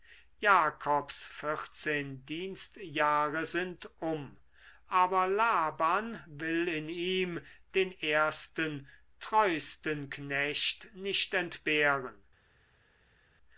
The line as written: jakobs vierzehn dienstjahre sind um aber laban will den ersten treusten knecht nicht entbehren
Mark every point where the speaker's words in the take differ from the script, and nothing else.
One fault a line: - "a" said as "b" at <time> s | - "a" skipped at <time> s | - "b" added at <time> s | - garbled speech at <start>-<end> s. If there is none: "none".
- "in ihm" added at 6.7 s